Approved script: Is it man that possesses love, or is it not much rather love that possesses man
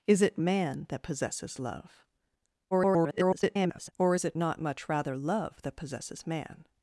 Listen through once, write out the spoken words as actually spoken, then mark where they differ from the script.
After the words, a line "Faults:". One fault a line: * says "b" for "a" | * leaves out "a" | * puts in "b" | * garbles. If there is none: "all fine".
Is it man that possesses love, [garbled] or is it not much rather love that possesses man
Faults:
* garbles